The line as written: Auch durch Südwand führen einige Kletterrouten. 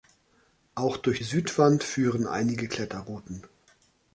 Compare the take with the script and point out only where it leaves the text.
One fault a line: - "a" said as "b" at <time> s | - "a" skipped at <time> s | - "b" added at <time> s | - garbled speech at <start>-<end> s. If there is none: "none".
none